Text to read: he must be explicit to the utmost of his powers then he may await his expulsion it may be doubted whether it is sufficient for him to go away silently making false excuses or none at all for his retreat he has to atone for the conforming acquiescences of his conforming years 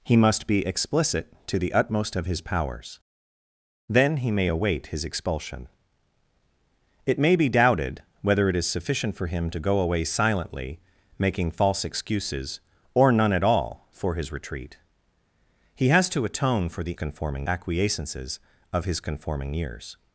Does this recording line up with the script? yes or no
yes